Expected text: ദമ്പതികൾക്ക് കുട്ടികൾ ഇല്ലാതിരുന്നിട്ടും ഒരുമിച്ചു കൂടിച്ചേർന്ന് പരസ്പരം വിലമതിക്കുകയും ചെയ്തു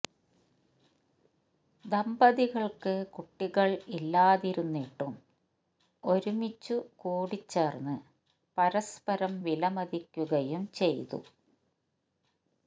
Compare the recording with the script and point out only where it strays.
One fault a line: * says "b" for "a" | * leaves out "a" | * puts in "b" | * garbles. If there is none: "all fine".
all fine